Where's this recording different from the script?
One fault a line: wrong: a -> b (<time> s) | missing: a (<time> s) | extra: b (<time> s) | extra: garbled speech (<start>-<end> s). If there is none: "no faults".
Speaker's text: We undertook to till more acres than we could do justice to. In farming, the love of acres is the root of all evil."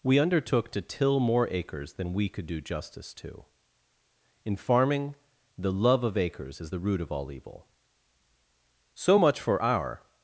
extra: So much for our (9.0 s)